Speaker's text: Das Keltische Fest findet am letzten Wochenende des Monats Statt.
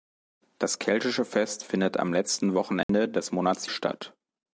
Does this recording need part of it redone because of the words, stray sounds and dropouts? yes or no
yes